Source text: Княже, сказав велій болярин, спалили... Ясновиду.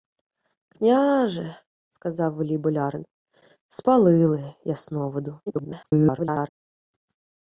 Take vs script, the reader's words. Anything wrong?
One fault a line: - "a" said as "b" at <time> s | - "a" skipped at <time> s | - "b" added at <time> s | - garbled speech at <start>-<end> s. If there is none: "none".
- garbled speech at 5.5-6.5 s